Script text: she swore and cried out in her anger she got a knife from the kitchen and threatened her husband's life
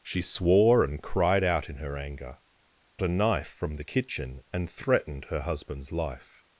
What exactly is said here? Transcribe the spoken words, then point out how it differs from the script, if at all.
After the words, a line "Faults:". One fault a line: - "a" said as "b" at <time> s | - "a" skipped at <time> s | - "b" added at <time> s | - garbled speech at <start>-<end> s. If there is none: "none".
she swore and cried out in her anger a knife from the kitchen and threatened her husband's life
Faults:
- "she got" skipped at 2.4 s